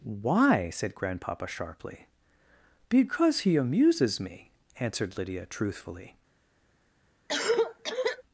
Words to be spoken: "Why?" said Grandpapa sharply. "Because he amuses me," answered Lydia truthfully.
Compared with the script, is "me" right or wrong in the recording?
right